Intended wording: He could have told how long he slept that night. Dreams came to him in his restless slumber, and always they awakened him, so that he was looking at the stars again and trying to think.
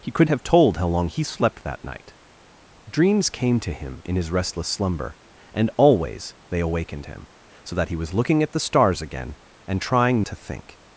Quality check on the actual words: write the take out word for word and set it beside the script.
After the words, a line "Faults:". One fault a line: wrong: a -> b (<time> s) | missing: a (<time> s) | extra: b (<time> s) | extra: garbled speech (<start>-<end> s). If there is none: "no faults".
He could have told how long he slept that night. Dreams came to him in his restless slumber, and always they awakened him, so that he was looking at the stars again and trying to think.
Faults:
no faults